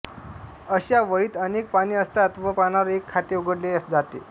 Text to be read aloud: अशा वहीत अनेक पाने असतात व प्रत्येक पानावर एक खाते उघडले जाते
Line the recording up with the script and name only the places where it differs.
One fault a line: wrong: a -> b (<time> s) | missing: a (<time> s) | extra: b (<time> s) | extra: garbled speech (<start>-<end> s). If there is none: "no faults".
missing: प्रत्येक (2.5 s)